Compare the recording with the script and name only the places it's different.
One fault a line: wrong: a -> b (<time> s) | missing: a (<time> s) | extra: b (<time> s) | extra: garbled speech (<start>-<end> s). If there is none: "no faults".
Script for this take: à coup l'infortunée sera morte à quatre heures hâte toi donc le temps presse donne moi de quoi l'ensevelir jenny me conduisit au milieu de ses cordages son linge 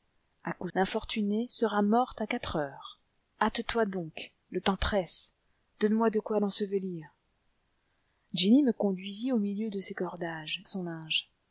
no faults